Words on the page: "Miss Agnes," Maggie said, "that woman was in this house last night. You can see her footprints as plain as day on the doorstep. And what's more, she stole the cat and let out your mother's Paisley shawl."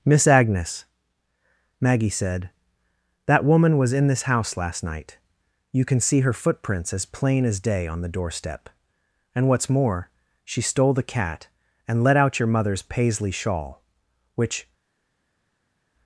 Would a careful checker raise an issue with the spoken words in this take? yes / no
yes